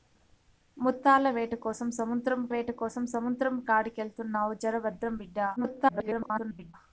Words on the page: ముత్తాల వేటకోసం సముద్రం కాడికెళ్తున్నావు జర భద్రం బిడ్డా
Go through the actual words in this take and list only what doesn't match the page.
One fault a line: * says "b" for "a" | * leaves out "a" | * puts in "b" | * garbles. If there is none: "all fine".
* puts in "వేటకోసం సముద్రం"
* garbles